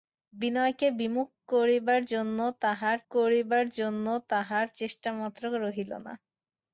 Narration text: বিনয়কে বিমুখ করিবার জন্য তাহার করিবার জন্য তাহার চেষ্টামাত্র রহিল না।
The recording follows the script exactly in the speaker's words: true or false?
true